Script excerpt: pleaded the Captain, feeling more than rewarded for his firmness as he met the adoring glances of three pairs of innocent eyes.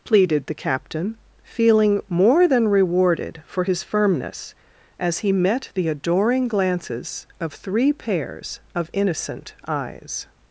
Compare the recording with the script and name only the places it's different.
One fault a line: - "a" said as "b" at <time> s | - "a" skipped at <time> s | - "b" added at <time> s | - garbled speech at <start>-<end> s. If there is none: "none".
none